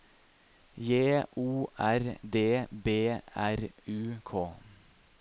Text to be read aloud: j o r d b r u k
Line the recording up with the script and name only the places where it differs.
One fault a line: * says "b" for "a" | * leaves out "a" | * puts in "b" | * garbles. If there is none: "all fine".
all fine